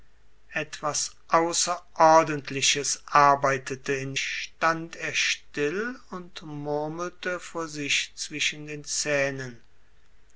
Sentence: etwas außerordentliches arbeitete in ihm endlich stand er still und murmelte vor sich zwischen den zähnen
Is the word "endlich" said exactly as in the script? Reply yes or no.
no